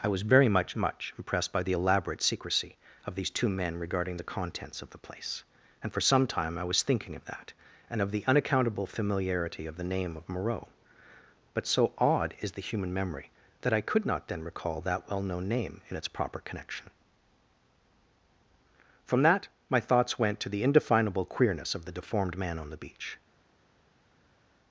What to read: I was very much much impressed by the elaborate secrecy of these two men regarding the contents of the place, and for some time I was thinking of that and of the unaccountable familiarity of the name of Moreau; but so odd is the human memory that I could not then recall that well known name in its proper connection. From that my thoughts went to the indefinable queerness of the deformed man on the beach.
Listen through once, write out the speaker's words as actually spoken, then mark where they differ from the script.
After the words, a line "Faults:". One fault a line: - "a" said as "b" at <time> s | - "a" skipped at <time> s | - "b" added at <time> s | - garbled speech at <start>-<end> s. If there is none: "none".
I was very much much impressed by the elaborate secrecy of these two men regarding the contents of the place, and for some time I was thinking of that and of the unaccountable familiarity of the name of Moreau; but so odd is the human memory that I could not then recall that well known name in its proper connection. From that my thoughts went to the indefinable queerness of the deformed man on the beach.
Faults:
none